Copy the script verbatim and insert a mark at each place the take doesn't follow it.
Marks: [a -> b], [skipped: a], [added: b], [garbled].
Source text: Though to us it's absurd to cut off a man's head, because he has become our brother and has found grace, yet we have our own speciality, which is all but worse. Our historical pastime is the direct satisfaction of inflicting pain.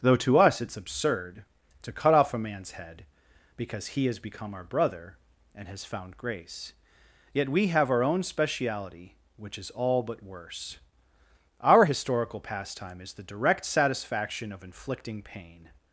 Though to us it's absurd to cut off a man's head, because he has become our brother and has found grace, yet we have our own speciality, which is all but worse. Our historical pastime is the direct satisfaction of inflicting pain.